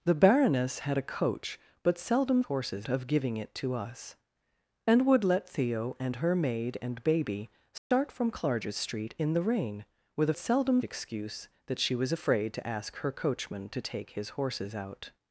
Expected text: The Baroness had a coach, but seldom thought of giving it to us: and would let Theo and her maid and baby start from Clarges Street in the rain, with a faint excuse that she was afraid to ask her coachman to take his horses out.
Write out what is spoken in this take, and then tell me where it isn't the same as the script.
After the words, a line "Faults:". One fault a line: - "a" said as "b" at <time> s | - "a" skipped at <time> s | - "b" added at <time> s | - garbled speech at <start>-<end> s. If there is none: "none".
The Baroness had a coach, but seldom horses of giving it to us: and would let Theo and her maid and baby start from Clarges Street in the rain, with a seldom excuse that she was afraid to ask her coachman to take his horses out.
Faults:
- "thought" said as "horses" at 2.4 s
- "faint" said as "seldom" at 10.4 s